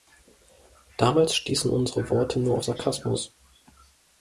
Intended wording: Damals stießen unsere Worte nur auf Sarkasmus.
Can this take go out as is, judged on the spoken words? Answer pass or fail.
pass